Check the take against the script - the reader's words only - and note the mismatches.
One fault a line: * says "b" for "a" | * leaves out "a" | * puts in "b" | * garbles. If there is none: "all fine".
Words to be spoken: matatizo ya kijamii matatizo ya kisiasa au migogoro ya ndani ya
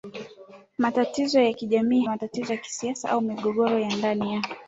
all fine